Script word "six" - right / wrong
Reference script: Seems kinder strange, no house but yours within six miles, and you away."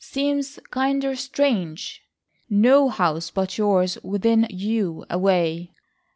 wrong